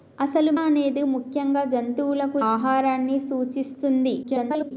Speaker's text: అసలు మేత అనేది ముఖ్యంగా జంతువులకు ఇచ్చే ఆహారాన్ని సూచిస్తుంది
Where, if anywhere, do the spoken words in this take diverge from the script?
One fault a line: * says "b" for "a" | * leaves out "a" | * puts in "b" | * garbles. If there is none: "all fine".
* leaves out "మేత"
* leaves out "ఇచ్చే"
* garbles